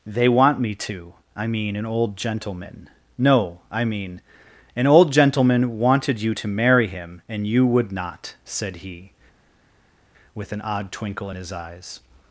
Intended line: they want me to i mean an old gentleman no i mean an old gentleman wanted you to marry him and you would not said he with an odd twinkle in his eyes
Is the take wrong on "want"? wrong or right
right